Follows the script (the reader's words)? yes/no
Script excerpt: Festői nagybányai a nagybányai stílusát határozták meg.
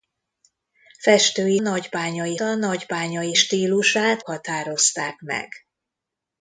yes